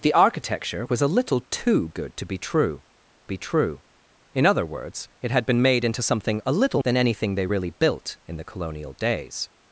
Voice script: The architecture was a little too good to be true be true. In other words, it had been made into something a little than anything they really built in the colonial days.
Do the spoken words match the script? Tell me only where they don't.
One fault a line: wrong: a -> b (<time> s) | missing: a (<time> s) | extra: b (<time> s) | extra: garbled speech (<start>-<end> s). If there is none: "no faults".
no faults